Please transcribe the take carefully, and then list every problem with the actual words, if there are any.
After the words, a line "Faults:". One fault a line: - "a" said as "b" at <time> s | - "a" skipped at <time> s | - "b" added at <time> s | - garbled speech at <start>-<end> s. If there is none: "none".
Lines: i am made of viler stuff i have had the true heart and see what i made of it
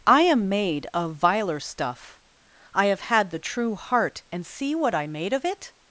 i am made of viler stuff i have had the true heart and see what i made of it
Faults:
none